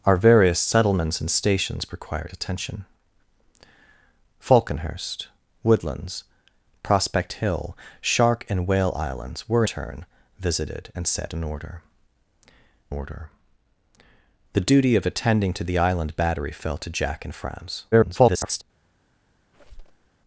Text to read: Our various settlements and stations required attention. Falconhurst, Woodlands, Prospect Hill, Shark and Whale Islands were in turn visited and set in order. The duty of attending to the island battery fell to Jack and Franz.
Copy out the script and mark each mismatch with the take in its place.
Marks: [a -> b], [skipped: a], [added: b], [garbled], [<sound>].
Our various settlements and stations required attention. Falconhurst, Woodlands, Prospect Hill, Shark and Whale Islands were [skipped: in] turn visited and set in order. [added: order] The duty of attending to the island battery fell to Jack and Franz. [garbled] [squeak]